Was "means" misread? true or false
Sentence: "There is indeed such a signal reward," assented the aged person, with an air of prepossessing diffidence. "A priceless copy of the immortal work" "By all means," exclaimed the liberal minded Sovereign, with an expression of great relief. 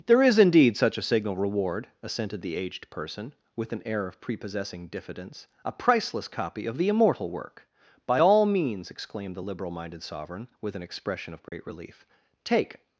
false